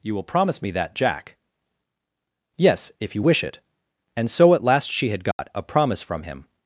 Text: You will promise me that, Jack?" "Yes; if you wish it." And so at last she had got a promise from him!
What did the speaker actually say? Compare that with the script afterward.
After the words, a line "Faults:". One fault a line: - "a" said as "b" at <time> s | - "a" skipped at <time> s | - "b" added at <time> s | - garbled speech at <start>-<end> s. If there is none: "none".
You will promise me that, Jack?" "Yes; if you wish it." And so at last she had got a promise from him!
Faults:
none